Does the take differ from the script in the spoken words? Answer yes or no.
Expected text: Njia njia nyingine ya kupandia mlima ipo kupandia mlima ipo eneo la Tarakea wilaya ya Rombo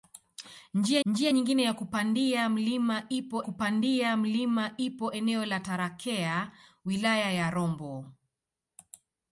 no